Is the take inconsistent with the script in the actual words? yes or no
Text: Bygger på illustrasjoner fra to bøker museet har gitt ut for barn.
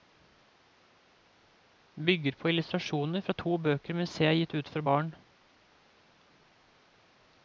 no